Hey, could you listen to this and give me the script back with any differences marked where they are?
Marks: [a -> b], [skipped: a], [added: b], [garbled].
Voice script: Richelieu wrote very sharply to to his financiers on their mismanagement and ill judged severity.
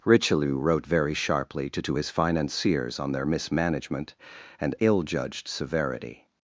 Richelieu wrote very sharply to to his financiers on their mismanagement and ill judged severity.